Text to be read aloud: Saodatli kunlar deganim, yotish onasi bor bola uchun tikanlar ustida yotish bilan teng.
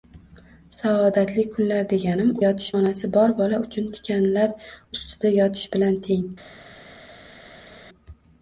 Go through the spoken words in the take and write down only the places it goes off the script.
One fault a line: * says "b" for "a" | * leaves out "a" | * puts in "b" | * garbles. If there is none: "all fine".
all fine